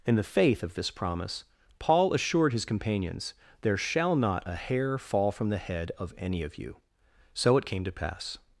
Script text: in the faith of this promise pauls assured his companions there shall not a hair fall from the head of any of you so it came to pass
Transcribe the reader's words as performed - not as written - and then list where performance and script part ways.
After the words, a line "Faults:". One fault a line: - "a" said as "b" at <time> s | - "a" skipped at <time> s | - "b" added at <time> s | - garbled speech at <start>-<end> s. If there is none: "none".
in the faith of this promise paul assured his companions there shall not a hair fall from the head of any of you so it came to pass
Faults:
- "pauls" said as "paul" at 1.8 s